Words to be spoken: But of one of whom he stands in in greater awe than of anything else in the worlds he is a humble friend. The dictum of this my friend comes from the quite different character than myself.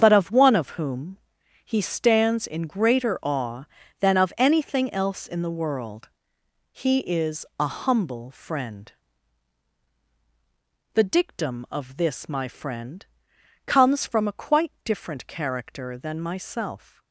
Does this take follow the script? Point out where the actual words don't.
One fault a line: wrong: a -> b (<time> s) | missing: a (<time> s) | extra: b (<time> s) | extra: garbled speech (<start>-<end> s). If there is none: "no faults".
missing: in (2.7 s)
wrong: worlds -> world (5.6 s)
wrong: the -> a (14.3 s)